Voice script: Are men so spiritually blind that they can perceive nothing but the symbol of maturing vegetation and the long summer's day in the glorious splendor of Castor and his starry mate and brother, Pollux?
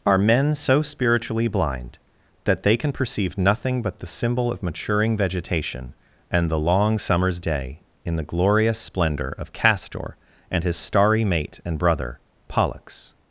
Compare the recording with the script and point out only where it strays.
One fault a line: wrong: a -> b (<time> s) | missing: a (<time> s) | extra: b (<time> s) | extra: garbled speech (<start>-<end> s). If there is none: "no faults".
no faults